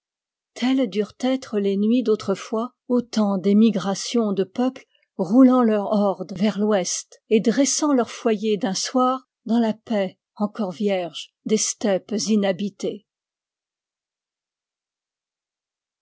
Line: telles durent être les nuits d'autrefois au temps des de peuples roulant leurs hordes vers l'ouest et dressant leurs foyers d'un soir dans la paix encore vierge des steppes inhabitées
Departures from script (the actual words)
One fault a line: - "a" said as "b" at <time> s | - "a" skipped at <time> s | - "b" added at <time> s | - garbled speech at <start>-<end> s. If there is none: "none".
- "migrations" added at 3.5 s